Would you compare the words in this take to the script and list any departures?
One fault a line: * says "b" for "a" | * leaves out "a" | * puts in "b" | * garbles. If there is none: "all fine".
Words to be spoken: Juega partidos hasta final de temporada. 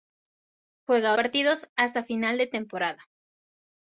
all fine